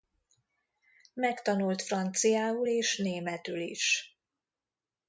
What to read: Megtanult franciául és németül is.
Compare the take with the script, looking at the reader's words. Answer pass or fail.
pass